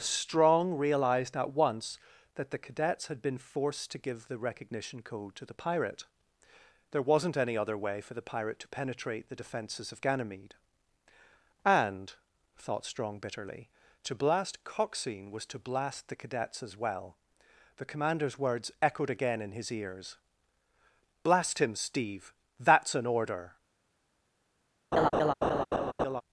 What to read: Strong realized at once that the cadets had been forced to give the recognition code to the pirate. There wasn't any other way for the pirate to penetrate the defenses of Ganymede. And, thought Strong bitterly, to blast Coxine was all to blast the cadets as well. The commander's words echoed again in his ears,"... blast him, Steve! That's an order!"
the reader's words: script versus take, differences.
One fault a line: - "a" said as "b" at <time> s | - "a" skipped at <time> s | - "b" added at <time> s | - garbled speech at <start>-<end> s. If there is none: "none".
- "all" skipped at 15.5 s